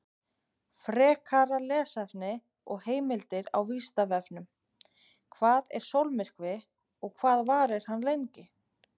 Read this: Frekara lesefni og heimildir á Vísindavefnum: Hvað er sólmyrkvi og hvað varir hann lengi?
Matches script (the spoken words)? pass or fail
pass